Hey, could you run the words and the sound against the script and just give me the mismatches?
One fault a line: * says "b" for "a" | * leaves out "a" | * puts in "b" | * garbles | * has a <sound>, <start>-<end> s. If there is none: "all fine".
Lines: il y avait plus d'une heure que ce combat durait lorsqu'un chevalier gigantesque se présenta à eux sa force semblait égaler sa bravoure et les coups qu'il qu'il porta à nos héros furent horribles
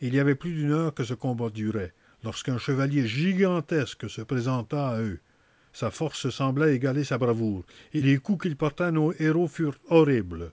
* leaves out "qu'il"